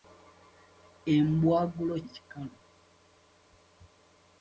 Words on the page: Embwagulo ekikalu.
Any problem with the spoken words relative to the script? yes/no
no